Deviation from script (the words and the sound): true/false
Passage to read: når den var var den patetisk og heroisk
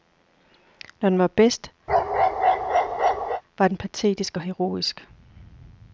true